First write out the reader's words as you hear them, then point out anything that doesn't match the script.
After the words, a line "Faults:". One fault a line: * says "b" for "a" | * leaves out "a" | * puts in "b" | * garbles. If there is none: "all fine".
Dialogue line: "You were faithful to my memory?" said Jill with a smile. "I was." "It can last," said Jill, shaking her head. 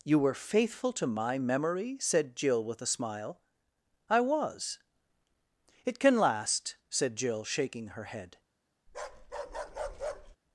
"You were faithful to my memory?" said Jill with a smile. "I was." "It can last," said Jill, shaking her head.
Faults:
all fine